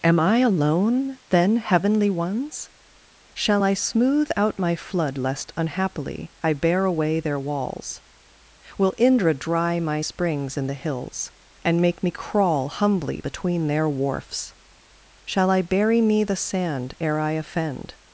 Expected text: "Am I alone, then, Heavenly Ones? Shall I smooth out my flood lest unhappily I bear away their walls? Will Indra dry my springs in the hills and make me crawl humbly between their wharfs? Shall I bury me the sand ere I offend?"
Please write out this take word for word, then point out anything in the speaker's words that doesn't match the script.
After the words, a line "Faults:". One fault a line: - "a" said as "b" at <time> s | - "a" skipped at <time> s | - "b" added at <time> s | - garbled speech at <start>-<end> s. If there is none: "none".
"Am I alone, then, Heavenly Ones? Shall I smooth out my flood lest unhappily I bear away their walls? Will Indra dry my springs in the hills and make me crawl humbly between their wharfs? Shall I bury me the sand ere I offend?"
Faults:
none